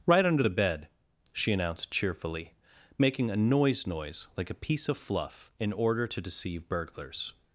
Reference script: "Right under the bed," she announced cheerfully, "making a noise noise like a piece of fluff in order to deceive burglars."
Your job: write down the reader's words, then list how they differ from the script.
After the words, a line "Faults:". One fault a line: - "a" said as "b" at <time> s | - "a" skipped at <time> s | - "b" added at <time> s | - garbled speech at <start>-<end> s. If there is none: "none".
"Right under the bed," she announced cheerfully, "making a noise noise like a piece of fluff in order to deceive burglars."
Faults:
none